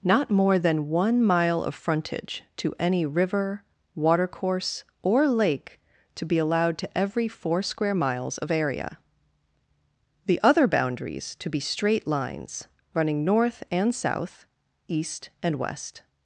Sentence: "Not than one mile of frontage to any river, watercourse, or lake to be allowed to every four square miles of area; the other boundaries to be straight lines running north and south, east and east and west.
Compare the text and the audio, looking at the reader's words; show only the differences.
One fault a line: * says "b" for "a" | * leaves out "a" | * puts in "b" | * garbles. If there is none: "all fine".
* puts in "more"
* leaves out "east and"